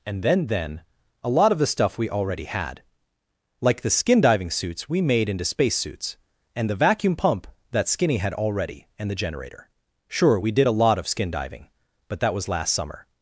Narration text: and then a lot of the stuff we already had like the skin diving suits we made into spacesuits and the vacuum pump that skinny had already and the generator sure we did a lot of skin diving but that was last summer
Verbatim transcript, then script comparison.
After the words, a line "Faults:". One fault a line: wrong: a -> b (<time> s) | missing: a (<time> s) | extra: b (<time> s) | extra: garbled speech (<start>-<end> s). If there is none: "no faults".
and then then a lot of the stuff we already had like the skin diving suits we made into spacesuits and the vacuum pump that skinny had already and the generator sure we did a lot of skin diving but that was last summer
Faults:
extra: then (0.5 s)